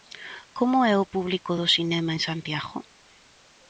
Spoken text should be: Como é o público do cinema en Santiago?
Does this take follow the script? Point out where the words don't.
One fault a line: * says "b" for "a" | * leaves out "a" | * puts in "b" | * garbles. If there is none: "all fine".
all fine